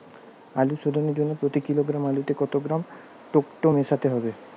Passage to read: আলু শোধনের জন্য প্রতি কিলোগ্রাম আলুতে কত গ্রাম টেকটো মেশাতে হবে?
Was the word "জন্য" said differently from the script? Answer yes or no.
no